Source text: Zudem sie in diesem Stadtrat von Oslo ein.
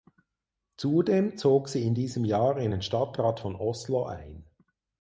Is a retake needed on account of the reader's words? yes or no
yes